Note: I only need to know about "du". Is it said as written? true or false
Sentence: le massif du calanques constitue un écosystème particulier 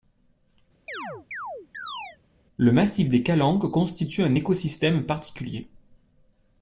false